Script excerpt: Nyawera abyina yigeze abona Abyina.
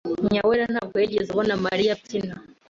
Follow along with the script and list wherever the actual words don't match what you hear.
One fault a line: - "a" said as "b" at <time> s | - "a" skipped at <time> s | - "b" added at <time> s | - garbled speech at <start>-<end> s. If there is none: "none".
- "abyina" said as "ntabwo" at 0.7 s
- "Mariya" added at 1.6 s